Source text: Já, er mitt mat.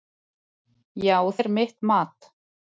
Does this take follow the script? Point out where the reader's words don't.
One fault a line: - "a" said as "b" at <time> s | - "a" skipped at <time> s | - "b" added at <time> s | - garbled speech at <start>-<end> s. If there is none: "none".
none